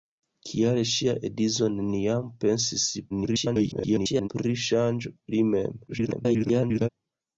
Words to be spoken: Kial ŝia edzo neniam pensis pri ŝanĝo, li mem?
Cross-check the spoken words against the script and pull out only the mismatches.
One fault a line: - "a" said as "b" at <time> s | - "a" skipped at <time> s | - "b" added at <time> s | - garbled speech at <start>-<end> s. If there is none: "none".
- garbled speech at 3.1-4.3 s
- garbled speech at 5.9-6.9 s